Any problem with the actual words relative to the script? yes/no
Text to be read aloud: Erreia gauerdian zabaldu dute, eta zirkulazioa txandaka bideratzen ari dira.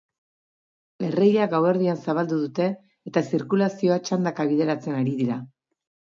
no